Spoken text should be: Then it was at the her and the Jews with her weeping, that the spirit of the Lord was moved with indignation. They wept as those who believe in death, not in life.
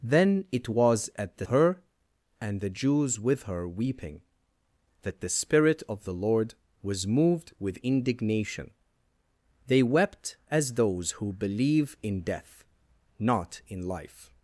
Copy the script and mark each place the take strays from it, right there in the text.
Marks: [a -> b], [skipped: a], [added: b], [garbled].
Then it was at the her and the Jews with her weeping, that the spirit of the Lord was moved with indignation. They wept as those who believe in death, not in life.